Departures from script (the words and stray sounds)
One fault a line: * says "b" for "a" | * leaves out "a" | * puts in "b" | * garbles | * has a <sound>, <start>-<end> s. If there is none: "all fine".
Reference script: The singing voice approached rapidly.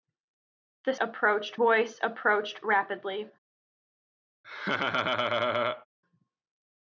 * says "approached" for "singing"
* has a laugh, 4.4-5.9 s